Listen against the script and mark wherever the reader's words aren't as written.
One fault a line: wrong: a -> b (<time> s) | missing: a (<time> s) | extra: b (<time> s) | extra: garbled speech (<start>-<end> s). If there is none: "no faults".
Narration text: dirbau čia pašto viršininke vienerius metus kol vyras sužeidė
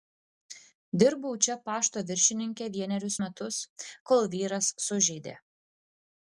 no faults